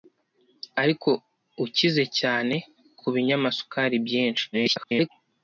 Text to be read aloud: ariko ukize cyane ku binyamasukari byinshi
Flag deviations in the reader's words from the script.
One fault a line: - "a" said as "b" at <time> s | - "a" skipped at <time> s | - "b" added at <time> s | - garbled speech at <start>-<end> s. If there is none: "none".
- garbled speech at 4.5-5.1 s